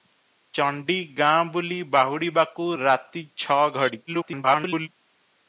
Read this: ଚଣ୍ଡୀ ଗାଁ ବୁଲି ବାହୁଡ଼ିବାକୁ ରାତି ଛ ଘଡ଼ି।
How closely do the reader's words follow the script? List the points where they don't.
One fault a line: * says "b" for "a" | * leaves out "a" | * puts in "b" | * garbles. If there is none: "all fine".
* garbles